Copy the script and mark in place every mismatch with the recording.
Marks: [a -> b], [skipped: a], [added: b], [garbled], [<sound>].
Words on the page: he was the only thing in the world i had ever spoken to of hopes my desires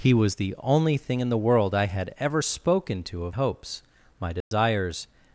he was the only thing in the world i had ever spoken to of hopes my desires [dropout]